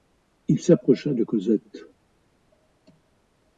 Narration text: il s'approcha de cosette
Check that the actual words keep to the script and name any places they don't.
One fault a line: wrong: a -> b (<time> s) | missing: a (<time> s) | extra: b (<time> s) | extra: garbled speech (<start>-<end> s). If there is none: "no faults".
no faults